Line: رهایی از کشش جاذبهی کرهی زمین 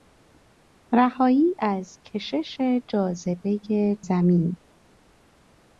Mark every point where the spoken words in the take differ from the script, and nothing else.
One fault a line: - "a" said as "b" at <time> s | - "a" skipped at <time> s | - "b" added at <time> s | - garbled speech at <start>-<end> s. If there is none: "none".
- "کرهی" skipped at 4.0 s